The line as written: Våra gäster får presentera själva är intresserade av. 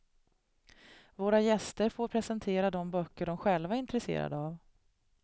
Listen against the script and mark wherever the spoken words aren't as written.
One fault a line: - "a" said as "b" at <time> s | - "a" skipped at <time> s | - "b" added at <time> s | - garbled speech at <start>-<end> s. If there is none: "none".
- "de böcker de" added at 2.7 s